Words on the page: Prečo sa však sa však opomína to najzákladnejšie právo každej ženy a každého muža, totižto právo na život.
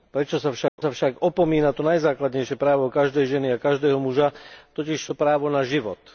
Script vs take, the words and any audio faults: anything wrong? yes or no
yes